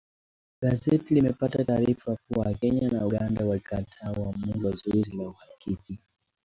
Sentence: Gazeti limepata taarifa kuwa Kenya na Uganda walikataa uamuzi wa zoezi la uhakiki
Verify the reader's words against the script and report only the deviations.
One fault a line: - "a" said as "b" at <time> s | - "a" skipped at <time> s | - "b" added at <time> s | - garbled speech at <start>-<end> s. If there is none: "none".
none